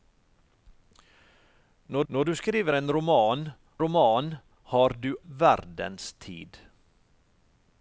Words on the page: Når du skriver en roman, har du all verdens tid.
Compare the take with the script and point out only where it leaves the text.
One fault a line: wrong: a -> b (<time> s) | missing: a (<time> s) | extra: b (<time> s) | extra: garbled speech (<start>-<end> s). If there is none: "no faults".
extra: når (2.1 s)
extra: roman (3.8 s)
missing: all (5.1 s)